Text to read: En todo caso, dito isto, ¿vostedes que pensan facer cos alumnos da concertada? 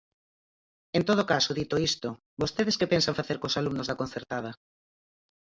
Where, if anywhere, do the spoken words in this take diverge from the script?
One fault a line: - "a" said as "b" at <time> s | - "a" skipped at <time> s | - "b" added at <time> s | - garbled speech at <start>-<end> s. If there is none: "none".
none